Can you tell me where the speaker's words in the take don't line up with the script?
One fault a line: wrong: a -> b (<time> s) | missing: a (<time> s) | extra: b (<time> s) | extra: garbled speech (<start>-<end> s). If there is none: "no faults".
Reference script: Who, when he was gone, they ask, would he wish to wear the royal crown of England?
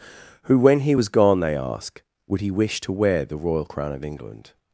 no faults